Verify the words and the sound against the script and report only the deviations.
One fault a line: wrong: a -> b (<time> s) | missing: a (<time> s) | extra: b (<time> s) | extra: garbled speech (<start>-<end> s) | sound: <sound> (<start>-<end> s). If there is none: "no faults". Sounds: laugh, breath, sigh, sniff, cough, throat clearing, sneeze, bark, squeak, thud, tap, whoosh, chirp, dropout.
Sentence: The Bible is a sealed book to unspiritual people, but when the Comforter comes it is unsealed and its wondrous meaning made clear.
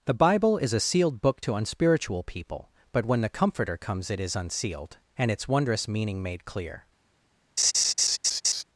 sound: laugh (7.6-8.6 s)